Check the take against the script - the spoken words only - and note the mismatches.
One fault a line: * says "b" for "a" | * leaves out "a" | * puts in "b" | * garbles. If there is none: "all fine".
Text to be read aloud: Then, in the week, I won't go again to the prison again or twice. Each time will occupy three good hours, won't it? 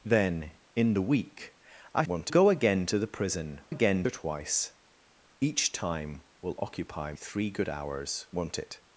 all fine